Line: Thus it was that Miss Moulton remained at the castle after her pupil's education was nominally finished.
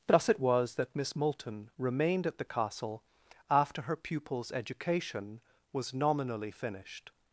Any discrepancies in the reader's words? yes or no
no